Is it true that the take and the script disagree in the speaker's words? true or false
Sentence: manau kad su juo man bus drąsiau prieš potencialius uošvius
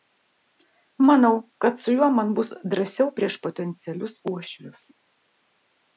false